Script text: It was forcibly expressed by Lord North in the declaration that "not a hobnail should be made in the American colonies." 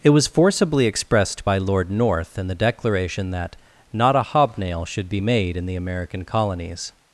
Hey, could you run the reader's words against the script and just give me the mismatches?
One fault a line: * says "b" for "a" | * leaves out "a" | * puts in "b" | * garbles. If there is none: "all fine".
all fine